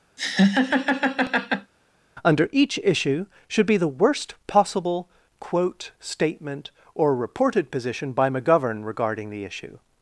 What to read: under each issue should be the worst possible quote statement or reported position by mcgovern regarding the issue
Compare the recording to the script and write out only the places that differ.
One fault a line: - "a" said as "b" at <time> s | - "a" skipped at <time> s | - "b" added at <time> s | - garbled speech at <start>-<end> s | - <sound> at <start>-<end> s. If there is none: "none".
- laugh at 0.2-1.7 s